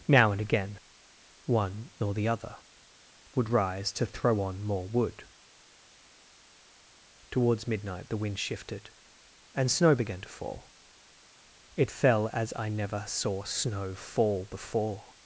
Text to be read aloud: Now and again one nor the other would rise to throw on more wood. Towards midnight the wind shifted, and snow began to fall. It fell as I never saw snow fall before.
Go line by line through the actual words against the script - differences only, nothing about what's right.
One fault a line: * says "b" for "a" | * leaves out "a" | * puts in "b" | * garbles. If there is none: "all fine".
all fine